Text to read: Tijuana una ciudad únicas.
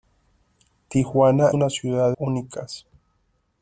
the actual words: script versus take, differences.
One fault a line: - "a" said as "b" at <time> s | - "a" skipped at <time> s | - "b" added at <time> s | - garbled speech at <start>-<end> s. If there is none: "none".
none